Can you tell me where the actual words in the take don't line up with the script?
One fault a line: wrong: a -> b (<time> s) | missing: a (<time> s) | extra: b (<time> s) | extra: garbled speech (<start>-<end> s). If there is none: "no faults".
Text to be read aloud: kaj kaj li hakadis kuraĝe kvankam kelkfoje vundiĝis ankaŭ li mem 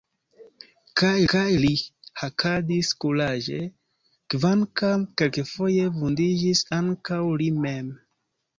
no faults